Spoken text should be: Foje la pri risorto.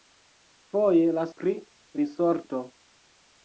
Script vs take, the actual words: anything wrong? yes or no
no